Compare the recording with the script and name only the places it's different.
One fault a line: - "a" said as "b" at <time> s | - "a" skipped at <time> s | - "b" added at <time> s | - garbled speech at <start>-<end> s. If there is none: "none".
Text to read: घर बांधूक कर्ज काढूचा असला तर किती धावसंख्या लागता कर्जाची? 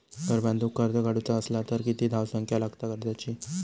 none